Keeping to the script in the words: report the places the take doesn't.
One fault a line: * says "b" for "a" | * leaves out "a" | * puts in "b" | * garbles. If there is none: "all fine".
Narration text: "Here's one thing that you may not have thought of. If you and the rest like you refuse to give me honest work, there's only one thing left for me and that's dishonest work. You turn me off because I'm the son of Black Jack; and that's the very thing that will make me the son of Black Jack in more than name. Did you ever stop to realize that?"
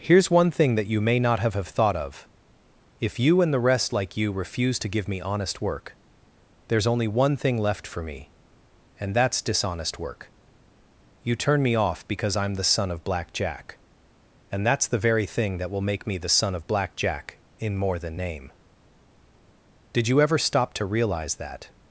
* puts in "have"